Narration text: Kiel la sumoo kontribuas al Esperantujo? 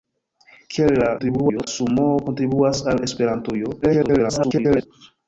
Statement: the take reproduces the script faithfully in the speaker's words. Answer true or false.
false